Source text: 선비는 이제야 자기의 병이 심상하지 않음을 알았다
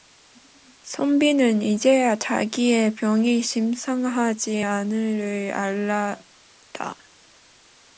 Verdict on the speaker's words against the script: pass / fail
pass